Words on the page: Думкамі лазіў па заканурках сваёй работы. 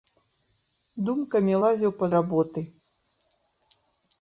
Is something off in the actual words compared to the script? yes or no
yes